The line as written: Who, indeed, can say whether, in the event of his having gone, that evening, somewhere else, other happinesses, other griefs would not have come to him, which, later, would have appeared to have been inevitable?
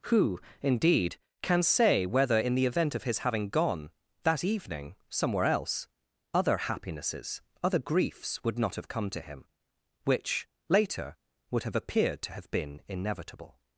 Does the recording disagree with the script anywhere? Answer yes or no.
no